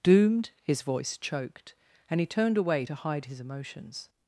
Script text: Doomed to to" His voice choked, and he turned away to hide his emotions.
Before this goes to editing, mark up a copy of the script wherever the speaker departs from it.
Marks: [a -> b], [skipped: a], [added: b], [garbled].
Doomed [skipped: to to"] His voice choked, and he turned away to hide his emotions.